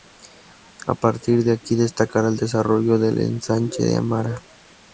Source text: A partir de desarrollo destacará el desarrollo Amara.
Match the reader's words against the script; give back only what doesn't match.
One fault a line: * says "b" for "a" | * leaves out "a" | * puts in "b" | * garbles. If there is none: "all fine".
* says "aquí" for "desarrollo"
* puts in "del Ensanche de"